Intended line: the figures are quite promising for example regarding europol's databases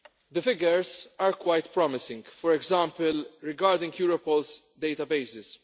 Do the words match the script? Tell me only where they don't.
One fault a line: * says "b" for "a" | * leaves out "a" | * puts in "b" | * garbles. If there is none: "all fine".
all fine